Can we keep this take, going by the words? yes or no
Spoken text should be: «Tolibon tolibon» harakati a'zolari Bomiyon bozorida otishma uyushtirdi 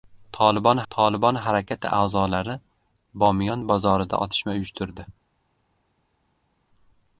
yes